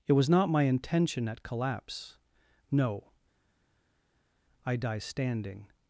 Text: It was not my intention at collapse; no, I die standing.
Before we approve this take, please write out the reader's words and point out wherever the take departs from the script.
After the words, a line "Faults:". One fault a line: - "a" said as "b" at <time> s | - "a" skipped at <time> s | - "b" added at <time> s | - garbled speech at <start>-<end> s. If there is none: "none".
It was not my intention at collapse; no, I die standing.
Faults:
none